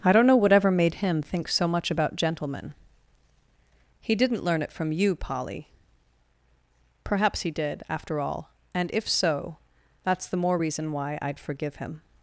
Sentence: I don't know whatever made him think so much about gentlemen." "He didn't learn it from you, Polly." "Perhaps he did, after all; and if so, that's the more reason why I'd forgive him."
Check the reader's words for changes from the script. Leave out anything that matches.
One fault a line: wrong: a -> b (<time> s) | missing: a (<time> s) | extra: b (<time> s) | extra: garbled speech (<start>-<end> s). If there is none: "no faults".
no faults